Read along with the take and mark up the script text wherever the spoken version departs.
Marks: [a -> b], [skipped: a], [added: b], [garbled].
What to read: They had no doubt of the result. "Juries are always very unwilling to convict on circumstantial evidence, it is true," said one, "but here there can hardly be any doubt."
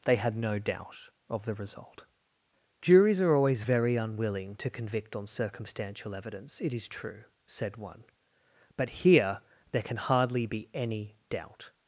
They had no doubt of the result. "Juries are always very unwilling to convict on circumstantial evidence, it is true," said one, "but here there can hardly be any doubt."